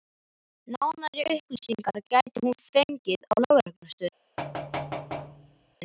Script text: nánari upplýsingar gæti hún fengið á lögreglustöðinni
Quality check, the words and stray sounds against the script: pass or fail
fail